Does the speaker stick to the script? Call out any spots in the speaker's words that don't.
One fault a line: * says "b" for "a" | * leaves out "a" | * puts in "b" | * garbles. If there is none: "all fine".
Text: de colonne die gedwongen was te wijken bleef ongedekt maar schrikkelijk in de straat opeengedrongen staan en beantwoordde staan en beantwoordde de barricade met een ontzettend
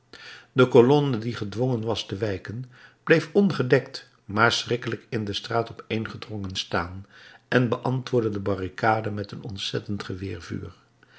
* leaves out "staan en beantwoordde"